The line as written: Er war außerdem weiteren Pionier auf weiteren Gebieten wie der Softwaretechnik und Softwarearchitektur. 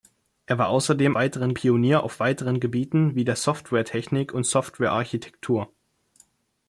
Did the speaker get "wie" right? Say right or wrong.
right